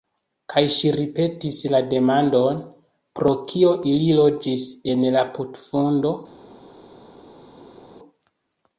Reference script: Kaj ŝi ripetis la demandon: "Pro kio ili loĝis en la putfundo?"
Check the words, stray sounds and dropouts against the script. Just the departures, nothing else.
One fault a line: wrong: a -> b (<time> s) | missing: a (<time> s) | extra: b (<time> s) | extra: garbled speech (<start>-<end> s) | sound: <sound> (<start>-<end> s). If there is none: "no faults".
no faults